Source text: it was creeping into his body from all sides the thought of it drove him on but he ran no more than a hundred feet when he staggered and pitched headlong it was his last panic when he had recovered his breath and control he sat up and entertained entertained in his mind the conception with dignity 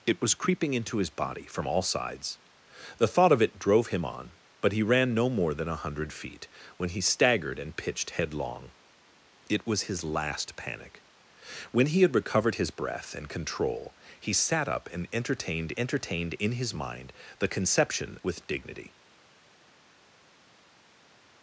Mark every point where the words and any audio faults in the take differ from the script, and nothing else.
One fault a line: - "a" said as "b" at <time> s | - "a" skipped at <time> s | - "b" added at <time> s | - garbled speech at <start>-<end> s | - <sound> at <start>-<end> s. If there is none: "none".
none